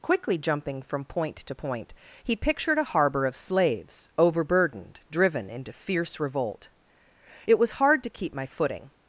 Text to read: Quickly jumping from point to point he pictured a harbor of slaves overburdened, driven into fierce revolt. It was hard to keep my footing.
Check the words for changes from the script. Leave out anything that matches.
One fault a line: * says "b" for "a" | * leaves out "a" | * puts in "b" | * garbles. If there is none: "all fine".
all fine